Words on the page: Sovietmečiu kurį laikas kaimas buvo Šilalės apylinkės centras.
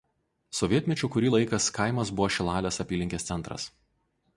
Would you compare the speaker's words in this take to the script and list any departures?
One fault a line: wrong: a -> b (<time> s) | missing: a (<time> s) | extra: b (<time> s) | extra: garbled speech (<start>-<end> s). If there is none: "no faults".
no faults